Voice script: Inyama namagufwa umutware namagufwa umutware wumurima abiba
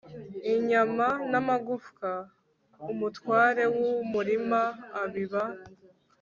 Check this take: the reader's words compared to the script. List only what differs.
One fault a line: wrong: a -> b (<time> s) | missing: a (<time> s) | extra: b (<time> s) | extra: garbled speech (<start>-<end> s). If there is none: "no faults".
missing: namagufwa umutware (3.6 s)